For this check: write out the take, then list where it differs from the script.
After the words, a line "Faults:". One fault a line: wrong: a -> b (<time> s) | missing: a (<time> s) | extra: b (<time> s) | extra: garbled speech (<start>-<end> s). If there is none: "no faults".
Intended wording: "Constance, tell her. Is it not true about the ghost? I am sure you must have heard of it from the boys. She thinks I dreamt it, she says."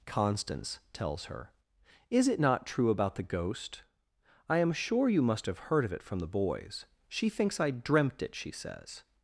"Constance, tells her. Is it not true about the ghost? I am sure you must have heard of it from the boys. She thinks I dreamt it, she says."
Faults:
wrong: tell -> tells (0.9 s)